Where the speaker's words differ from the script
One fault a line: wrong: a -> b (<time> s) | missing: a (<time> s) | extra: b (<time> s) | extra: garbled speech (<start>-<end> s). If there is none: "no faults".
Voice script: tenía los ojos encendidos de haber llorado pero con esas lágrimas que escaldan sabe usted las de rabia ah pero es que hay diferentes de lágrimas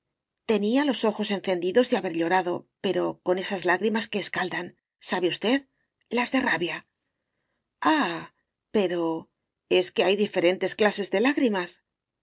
extra: clases (10.8 s)